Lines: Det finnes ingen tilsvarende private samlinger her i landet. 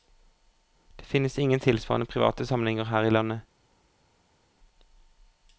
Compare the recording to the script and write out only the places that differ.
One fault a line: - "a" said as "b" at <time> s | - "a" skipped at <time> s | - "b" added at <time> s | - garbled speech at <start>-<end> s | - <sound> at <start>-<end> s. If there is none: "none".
none